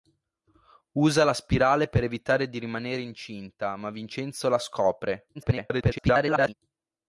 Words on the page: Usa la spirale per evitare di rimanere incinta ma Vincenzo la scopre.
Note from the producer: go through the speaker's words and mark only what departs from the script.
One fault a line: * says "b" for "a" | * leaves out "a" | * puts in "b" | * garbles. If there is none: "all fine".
* garbles